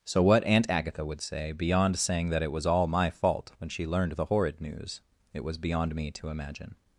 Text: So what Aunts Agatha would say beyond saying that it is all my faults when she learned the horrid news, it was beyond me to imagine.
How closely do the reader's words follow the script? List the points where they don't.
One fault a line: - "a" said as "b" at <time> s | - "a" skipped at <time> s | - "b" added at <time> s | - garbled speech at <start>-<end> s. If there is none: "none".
- "Aunts" said as "Aunt" at 0.4 s
- "is" said as "was" at 2.5 s
- "faults" said as "fault" at 3.1 s